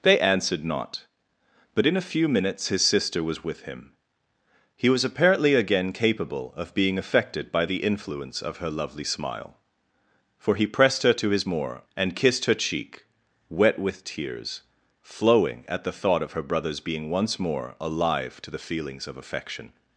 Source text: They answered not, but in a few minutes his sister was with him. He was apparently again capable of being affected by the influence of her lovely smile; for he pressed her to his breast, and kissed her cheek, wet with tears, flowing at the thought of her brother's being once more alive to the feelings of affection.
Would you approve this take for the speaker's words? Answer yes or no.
no